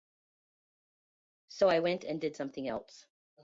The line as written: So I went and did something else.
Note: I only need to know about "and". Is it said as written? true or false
true